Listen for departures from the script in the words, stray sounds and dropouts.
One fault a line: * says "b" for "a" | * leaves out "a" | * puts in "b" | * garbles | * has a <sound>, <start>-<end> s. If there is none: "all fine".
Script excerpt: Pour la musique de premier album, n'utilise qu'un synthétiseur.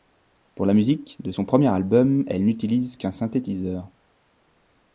* puts in "son"
* puts in "elle"